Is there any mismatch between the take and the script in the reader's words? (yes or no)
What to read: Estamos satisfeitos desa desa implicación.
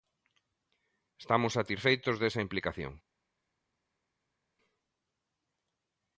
yes